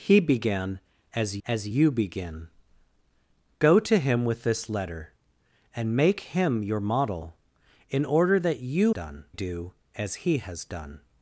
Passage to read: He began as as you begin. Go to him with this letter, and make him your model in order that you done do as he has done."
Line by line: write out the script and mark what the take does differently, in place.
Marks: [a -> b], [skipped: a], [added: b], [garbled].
He began as as you begin. Go to him with this letter, and make him your model in order that you done do as he has done."